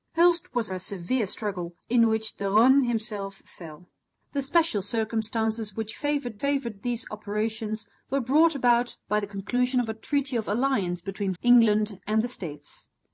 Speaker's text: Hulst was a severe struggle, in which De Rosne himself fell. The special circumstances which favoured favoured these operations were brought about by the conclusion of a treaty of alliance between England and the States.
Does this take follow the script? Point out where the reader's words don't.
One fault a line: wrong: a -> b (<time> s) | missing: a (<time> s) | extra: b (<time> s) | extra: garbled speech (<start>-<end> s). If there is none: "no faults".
no faults